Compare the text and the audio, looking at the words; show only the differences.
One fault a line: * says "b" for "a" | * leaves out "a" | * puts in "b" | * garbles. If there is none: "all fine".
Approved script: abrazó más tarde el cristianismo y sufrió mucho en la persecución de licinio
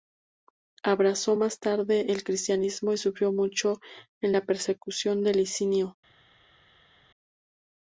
all fine